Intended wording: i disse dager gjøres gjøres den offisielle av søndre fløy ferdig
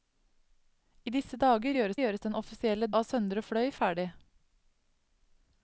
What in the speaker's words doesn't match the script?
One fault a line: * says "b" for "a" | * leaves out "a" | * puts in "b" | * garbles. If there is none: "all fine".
all fine